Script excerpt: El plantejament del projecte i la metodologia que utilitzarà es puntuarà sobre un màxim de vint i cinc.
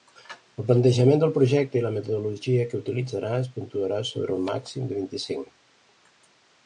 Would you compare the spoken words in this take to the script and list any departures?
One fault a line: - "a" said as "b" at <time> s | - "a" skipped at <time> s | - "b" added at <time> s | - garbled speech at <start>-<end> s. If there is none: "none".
none